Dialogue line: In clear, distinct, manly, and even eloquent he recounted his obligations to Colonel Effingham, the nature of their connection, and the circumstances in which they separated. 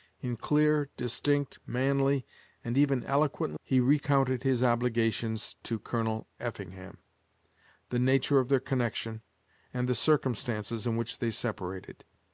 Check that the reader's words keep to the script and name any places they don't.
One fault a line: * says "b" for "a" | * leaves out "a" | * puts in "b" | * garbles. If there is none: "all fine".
all fine